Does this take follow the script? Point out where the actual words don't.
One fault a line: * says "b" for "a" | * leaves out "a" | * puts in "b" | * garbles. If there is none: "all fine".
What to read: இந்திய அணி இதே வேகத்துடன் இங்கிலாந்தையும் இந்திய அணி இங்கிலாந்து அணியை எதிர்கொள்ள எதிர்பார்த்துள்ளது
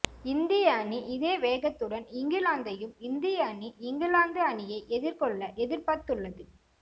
all fine